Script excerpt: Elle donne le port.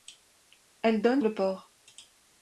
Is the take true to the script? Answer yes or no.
yes